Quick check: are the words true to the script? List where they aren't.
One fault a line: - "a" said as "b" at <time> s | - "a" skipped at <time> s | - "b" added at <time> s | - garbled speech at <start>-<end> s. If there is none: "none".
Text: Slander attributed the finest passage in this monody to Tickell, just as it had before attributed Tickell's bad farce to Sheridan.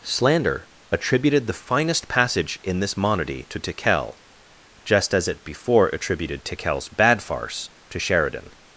- "had" skipped at 5.4 s